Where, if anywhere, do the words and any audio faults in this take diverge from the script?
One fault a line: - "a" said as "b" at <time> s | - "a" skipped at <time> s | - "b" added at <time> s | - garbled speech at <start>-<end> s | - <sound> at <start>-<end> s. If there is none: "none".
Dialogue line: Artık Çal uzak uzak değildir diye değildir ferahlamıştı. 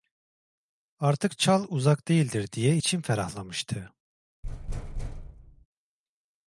- "uzak" skipped at 2.1 s
- "değildir" said as "içim" at 2.7 s
- thud at 4.4-5.7 s